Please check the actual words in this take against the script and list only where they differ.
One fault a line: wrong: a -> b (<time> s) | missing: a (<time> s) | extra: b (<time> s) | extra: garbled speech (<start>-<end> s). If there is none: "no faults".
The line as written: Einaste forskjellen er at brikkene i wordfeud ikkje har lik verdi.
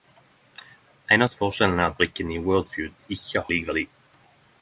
missing: har (3.5 s)